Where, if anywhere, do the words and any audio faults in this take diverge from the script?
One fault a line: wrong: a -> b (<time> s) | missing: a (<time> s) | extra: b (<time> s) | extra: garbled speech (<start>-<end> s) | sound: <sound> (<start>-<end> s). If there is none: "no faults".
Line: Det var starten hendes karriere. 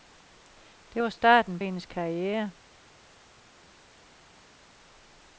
no faults